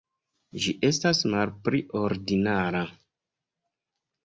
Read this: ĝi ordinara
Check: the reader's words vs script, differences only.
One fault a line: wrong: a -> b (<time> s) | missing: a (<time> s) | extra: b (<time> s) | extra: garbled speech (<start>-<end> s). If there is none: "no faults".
extra: estas malpli (0.9 s)